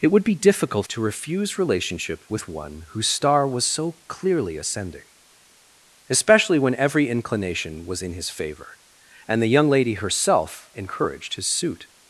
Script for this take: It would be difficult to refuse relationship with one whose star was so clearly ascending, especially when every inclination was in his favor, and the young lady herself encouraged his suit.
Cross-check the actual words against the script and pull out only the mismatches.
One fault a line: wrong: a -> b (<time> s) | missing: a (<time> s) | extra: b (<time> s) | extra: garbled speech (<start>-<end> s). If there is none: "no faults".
no faults